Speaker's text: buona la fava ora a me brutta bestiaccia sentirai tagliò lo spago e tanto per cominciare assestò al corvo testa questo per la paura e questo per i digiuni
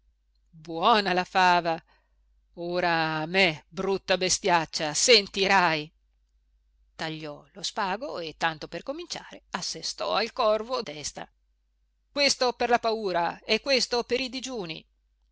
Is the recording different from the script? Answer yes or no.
no